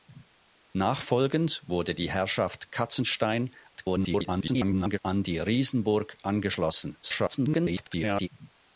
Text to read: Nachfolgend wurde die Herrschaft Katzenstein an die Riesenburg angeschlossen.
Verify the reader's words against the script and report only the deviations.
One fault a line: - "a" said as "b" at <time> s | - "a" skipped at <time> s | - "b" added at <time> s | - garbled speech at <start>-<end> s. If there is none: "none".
- garbled speech at 3.7-5.0 s
- garbled speech at 7.0-8.3 s